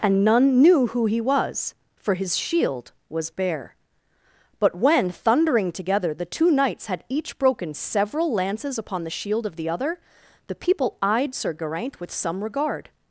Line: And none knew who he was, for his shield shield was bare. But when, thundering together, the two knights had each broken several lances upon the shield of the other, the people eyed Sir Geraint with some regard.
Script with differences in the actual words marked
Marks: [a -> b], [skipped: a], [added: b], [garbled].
And none knew who he was, for his shield [skipped: shield] was bare. But when, thundering together, the two knights had each broken several lances upon the shield of the other, the people eyed Sir Geraint with some regard.